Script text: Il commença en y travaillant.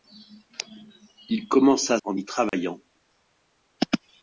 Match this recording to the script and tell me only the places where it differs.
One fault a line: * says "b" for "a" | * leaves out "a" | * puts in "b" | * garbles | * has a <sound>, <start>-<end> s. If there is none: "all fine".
* has a dropout, 2.5-2.5 s